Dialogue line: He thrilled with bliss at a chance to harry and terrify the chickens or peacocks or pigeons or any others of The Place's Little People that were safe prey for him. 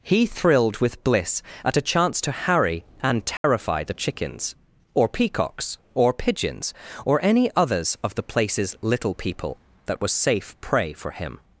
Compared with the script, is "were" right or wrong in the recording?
wrong